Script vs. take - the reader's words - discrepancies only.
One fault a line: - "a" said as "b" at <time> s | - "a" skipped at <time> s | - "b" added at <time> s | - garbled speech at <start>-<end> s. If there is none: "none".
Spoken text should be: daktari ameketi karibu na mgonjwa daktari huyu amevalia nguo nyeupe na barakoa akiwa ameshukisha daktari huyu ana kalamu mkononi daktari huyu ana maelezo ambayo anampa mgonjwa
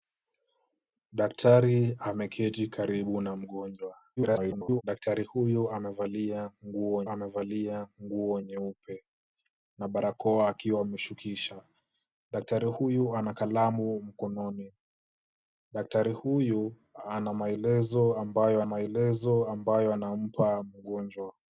- garbled speech at 4.2-4.8 s
- "amevalia nguo" added at 7.1 s
- "maelezo ambayo" added at 18.6 s